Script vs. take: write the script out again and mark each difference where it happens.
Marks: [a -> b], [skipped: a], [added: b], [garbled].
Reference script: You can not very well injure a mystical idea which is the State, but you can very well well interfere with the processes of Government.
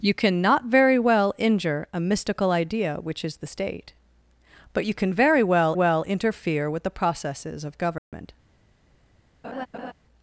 You can not very well injure a mystical idea which is the State, but you can very well well interfere with the processes of Government.